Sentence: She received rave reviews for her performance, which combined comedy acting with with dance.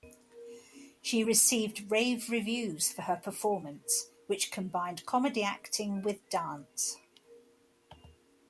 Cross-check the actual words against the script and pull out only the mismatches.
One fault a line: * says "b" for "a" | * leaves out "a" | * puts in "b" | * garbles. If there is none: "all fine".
* leaves out "with"